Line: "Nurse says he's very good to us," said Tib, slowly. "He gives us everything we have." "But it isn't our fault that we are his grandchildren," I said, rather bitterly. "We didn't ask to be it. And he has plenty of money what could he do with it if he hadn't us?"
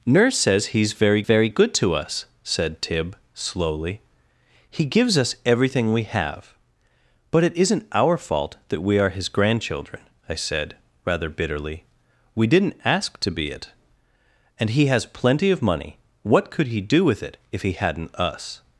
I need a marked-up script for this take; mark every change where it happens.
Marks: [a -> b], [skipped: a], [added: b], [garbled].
"Nurse says he's very [added: very] good to us," said Tib, slowly. "He gives us everything we have." "But it isn't our fault that we are his grandchildren," I said, rather bitterly. "We didn't ask to be it. And he has plenty of money what could he do with it if he hadn't us?"